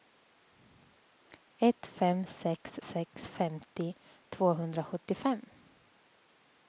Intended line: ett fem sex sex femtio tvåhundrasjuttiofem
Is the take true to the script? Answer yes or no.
yes